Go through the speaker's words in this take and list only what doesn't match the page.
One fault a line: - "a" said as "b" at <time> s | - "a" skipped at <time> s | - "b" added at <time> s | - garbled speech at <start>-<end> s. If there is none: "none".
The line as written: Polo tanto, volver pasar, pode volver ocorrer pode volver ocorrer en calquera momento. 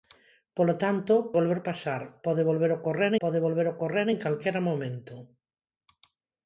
none